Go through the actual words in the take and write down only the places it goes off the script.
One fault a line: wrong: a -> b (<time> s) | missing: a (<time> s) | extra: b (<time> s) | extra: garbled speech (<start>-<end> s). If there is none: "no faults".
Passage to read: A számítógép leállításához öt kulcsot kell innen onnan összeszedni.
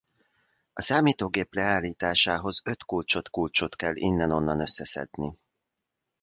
extra: kulcsot (3.3 s)